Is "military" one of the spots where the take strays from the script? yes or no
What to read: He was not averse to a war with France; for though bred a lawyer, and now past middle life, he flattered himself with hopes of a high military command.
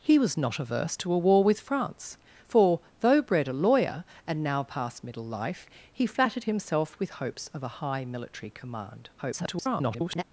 no